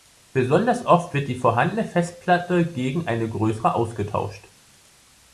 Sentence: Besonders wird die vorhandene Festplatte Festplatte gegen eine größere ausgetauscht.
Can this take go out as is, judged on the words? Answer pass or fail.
fail